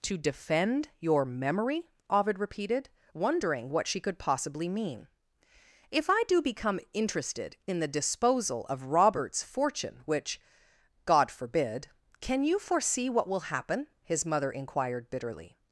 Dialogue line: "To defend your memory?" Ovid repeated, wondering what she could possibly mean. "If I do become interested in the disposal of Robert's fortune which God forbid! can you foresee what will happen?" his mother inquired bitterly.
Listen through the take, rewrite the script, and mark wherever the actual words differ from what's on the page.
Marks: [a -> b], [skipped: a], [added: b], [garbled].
"To defend your memory?" Ovid repeated, wondering what she could possibly mean. "If I do become interested in the disposal of Robert's fortune which God forbid! can you foresee what will happen?" his mother inquired bitterly.